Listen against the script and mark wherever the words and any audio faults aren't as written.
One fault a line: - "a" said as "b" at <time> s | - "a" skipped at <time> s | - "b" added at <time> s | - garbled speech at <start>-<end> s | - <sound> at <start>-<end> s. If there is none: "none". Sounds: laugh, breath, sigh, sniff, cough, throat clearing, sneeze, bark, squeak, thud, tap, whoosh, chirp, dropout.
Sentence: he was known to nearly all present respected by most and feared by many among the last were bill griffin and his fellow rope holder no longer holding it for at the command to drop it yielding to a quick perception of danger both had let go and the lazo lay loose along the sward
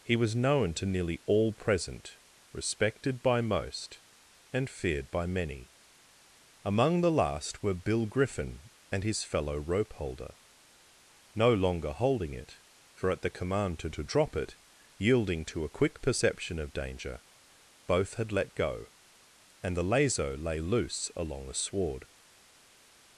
- "to" added at 13.9 s